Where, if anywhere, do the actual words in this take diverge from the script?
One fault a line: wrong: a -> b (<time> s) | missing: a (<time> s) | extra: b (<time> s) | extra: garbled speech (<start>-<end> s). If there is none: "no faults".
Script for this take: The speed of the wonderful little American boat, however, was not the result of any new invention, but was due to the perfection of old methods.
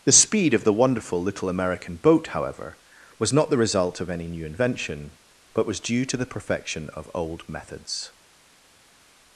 no faults